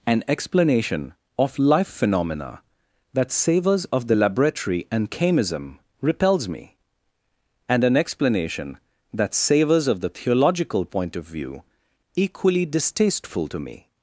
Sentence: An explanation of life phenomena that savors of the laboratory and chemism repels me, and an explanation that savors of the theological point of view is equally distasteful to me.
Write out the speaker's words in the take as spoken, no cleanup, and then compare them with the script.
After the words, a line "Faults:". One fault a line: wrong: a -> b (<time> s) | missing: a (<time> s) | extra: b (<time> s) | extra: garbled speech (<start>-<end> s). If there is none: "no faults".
An explanation of life phenomena that savors of the laboratory and chemism repels me, and an explanation that savors of the theological point of view equally distasteful to me.
Faults:
missing: is (11.6 s)